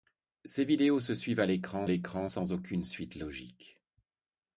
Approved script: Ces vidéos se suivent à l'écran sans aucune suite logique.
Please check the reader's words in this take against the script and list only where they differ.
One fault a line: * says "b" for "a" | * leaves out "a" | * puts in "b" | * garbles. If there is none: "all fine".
* puts in "l'écran"